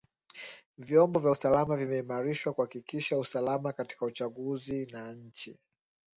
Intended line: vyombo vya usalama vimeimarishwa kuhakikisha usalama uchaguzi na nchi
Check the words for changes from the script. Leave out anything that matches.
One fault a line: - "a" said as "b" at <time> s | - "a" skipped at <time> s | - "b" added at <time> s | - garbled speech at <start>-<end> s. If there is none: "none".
- "katika" added at 3.7 s